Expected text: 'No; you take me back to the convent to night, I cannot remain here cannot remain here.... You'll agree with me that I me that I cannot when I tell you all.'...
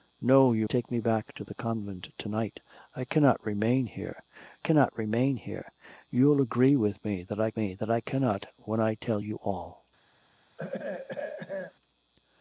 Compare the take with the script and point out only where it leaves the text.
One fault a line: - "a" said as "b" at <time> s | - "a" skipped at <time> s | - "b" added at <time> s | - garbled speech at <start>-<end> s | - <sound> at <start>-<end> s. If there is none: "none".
- throat clearing at 10.6-11.7 s